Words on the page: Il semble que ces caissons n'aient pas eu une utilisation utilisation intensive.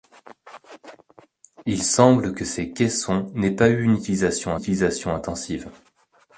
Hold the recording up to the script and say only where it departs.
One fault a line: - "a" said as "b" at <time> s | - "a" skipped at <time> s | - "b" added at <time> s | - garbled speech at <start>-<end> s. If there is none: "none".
none